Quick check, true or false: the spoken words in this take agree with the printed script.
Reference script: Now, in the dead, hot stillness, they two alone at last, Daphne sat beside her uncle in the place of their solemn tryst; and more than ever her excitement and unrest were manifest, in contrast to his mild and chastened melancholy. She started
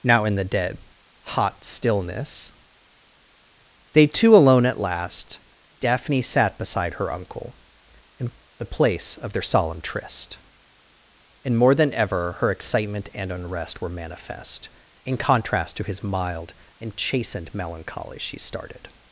true